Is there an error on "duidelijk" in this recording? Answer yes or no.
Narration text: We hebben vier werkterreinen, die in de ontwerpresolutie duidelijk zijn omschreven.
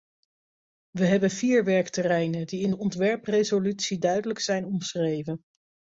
no